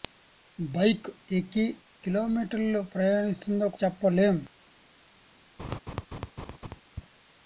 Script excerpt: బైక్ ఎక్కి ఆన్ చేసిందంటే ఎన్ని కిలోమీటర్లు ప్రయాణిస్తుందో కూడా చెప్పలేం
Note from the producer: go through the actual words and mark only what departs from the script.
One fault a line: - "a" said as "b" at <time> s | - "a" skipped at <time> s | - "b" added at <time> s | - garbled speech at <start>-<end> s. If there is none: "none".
- "ఆన్ చేసిందంటే ఎన్ని" skipped at 1.6 s
- "కూడా" skipped at 3.7 s